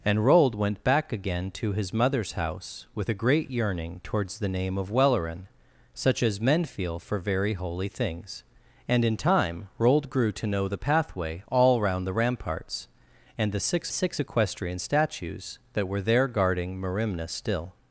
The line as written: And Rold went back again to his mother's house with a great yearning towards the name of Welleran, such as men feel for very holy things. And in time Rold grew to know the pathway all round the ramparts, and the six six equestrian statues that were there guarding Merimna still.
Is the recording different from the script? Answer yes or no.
no